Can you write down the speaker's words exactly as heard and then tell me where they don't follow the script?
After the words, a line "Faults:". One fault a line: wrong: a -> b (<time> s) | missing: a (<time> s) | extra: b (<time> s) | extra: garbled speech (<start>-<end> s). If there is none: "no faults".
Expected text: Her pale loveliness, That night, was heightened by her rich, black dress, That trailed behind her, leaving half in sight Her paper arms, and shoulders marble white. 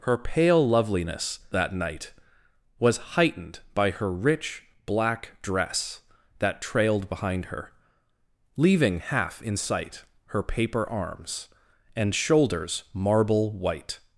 Her pale loveliness, That night, was heightened by her rich, black dress, That trailed behind her, leaving half in sight Her paper arms, and shoulders marble white.
Faults:
no faults